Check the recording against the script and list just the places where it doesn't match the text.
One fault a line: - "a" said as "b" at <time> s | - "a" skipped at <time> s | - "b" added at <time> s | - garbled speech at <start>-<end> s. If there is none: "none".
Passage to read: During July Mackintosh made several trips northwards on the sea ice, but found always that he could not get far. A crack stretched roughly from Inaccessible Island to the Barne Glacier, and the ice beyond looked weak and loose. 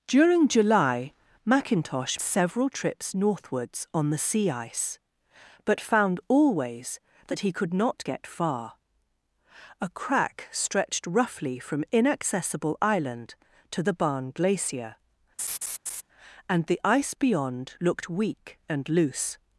- "made" skipped at 2.2 s